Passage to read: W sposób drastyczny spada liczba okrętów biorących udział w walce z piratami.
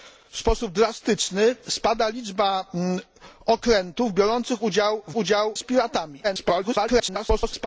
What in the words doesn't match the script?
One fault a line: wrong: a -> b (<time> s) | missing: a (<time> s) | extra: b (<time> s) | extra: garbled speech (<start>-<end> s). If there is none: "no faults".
wrong: walce -> udział (5.2 s)
extra: garbled speech (6.2-7.7 s)